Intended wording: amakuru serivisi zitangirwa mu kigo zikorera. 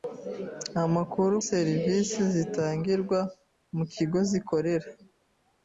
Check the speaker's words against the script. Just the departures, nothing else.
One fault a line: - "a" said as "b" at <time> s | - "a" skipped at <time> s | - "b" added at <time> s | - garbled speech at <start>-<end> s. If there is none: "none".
none